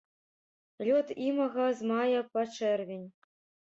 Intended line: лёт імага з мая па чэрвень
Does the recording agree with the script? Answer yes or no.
yes